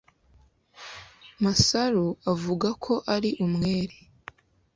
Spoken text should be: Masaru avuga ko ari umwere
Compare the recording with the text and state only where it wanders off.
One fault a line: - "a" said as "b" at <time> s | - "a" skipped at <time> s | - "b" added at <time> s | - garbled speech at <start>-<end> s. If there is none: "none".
none